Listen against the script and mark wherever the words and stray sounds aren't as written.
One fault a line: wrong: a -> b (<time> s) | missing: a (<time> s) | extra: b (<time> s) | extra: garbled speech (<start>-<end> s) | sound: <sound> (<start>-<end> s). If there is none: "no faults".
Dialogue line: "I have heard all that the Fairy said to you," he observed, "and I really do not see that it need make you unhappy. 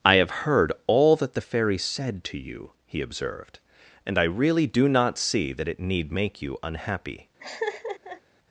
sound: laugh (7.4-8.2 s)